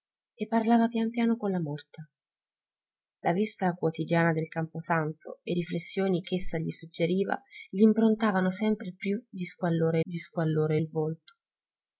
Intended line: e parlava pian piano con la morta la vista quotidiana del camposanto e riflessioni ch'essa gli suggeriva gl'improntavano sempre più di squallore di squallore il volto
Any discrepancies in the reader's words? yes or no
no